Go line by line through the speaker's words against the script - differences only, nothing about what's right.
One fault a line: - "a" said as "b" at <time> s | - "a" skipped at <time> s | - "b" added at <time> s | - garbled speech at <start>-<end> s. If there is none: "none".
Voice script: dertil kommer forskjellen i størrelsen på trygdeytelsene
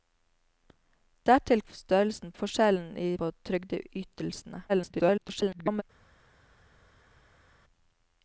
- "kommer" said as "størrelsen" at 1.7 s
- "størrelsen" skipped at 3.1 s
- garbled speech at 4.7-5.8 s